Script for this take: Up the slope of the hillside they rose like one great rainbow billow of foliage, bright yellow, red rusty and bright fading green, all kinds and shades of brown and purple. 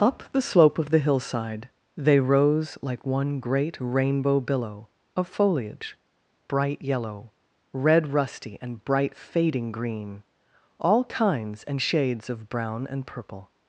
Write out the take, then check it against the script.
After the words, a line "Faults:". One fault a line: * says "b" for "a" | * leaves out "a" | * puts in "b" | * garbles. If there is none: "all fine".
Up the slope of the hillside they rose like one great rainbow billow of foliage, bright yellow, red rusty and bright fading green, all kinds and shades of brown and purple.
Faults:
all fine